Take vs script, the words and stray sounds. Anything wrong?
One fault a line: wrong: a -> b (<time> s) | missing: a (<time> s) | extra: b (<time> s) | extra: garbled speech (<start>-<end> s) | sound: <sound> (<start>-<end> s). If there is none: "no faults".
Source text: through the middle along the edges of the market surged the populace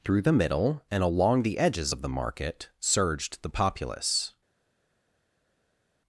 extra: and (0.9 s)